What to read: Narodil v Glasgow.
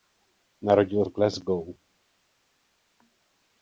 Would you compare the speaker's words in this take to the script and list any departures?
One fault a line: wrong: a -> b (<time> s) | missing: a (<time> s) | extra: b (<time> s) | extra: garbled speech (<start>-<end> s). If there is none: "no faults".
no faults